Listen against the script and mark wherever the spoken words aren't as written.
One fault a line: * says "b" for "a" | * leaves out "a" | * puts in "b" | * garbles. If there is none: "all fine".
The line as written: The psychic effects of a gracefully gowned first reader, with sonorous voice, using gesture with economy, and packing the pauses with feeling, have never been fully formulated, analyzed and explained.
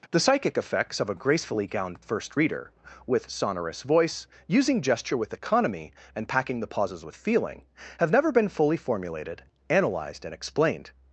all fine